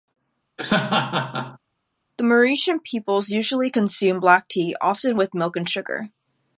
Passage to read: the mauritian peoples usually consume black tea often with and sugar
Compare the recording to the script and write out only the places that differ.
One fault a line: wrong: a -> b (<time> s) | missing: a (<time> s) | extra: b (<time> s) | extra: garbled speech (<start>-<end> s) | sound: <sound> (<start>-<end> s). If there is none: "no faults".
sound: laugh (0.6-1.6 s)
extra: milk (5.3 s)